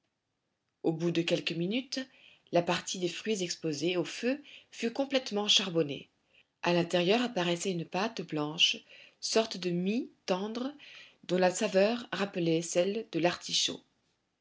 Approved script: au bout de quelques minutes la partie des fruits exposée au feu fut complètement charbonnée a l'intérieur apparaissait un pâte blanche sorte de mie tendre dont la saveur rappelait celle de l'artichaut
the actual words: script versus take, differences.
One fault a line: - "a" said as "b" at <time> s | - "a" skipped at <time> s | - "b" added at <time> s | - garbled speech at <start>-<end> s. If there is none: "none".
- "un" said as "une" at 7.7 s